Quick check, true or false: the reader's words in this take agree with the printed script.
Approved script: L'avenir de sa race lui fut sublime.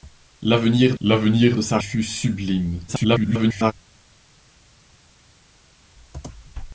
false